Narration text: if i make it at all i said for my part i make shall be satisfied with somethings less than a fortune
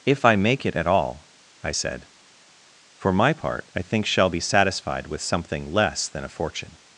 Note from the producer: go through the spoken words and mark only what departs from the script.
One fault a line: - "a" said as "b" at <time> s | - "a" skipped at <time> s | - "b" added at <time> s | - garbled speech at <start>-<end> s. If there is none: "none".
- "make" said as "think" at 3.8 s
- "somethings" said as "something" at 5.2 s